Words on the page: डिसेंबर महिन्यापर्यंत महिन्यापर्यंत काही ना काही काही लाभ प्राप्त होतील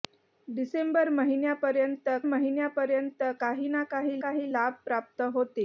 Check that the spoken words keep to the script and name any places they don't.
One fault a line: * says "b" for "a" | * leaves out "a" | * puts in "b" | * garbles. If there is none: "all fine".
all fine